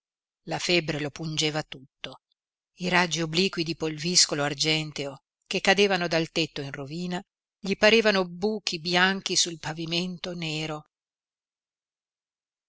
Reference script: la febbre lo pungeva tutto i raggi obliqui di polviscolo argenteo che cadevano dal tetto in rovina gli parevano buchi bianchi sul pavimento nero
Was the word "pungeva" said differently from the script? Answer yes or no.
no